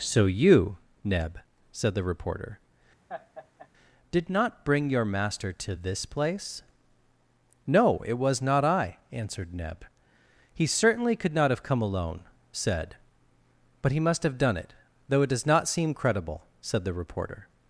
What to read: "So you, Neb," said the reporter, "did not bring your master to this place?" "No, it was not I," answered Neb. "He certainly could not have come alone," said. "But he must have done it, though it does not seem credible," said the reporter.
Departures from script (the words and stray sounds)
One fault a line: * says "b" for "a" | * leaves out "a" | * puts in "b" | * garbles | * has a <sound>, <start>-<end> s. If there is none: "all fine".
* has a laugh, 3.1-3.7 s